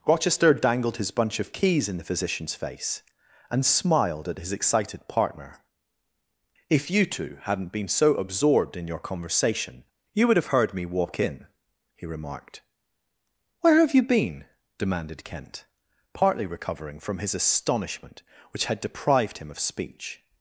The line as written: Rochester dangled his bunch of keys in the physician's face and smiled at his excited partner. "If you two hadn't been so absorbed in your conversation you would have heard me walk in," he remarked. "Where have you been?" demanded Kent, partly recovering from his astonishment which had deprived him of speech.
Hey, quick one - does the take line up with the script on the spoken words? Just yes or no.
yes